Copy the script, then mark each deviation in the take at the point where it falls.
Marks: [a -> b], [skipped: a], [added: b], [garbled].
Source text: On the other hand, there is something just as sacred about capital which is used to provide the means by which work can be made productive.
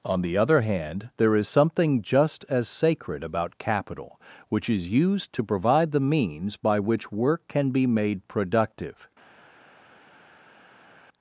On the other hand, there is something just as sacred about capital which is used to provide the means by which work can be made productive.